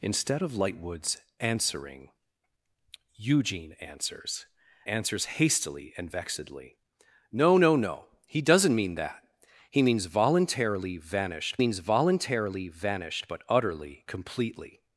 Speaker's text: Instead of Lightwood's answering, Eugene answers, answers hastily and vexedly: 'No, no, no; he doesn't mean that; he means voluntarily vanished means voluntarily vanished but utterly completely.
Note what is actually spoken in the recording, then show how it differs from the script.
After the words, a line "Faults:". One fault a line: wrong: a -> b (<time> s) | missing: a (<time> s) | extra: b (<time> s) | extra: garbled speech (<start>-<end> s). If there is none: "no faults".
Instead of Lightwood's answering, Eugene answers, answers hastily and vexedly: 'No, no, no; he doesn't mean that; he means voluntarily vanished means voluntarily vanished but utterly completely.
Faults:
no faults